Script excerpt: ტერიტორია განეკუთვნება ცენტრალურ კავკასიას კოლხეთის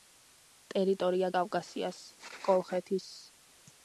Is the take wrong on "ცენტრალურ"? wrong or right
wrong